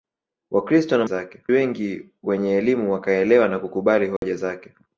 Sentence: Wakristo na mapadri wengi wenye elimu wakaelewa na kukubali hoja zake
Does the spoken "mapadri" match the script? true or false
false